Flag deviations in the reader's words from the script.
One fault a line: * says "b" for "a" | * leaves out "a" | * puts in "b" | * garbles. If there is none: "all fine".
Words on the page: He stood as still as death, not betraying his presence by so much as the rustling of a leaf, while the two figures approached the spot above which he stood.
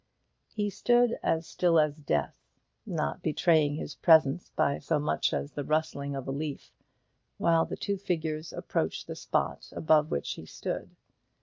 all fine